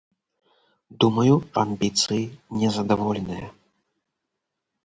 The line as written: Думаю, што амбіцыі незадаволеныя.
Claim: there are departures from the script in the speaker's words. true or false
true